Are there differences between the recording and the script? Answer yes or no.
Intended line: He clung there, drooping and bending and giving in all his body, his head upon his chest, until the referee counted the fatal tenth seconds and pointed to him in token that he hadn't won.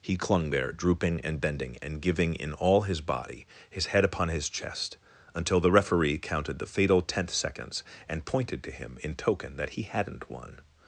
no